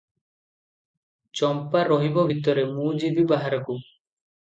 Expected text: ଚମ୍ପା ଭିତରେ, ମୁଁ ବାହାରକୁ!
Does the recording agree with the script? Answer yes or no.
no